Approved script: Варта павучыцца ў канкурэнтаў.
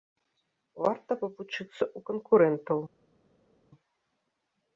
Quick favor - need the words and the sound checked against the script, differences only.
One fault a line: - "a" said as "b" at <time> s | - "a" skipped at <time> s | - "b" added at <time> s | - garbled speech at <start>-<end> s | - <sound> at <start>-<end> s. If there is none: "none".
none